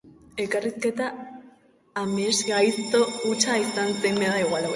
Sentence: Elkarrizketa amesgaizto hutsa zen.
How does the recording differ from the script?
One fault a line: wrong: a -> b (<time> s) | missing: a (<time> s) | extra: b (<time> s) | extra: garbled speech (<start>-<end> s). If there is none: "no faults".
extra: izan (3.7 s)